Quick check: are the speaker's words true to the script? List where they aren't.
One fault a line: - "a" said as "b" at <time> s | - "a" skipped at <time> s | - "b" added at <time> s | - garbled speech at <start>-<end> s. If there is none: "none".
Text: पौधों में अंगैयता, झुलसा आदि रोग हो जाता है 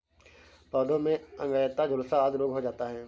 none